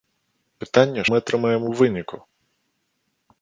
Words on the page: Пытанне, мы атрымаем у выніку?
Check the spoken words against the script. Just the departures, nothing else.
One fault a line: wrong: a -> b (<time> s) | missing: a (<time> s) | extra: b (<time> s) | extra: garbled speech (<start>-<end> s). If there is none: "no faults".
no faults